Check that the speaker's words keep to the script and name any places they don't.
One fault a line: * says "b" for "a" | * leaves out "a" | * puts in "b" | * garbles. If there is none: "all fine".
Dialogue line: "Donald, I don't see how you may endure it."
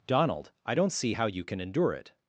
* says "can" for "may"